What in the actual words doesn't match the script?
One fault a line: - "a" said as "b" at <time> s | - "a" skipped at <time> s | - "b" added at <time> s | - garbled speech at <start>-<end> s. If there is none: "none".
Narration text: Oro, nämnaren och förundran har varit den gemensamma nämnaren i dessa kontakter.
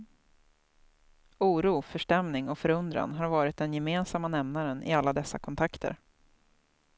- "nämnaren" said as "förstämning" at 1.8 s
- "alla" added at 4.9 s